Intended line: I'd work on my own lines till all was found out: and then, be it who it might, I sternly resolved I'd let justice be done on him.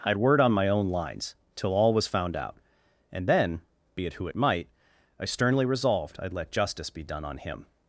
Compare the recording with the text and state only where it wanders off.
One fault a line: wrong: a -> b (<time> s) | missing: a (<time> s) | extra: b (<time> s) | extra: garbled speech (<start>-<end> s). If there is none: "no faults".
wrong: work -> word (0.2 s)